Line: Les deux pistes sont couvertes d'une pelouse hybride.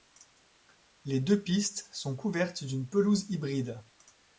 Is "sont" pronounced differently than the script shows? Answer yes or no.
no